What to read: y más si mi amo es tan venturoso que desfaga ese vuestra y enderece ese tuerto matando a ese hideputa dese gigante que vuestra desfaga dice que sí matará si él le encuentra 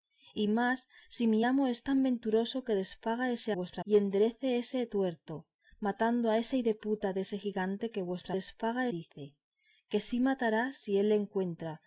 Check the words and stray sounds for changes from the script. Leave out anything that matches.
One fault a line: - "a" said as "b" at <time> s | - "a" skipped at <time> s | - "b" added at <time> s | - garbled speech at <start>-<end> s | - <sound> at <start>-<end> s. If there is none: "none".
none